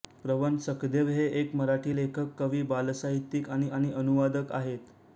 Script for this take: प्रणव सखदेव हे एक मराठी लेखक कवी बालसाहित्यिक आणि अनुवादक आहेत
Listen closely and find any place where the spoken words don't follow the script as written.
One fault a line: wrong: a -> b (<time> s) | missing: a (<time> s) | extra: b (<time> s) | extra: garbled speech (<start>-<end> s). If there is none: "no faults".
extra: आणि (3.7 s)